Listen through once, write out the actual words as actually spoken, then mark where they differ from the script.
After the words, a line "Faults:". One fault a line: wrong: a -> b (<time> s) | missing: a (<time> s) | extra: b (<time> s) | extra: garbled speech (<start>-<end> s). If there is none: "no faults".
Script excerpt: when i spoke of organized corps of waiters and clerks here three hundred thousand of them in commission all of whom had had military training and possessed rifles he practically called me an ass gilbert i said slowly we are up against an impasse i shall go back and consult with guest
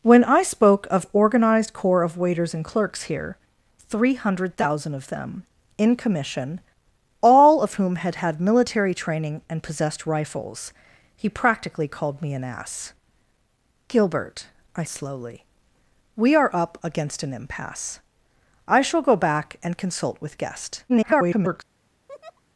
when i spoke of organized corps of waiters and clerks here three hundred thousand of them in commission all of whom had had military training and possessed rifles he practically called me an ass gilbert i slowly we are up against an impasse i shall go back and consult with guest [garbled]
Faults:
missing: said (14.9 s)
extra: garbled speech (20.9-21.6 s)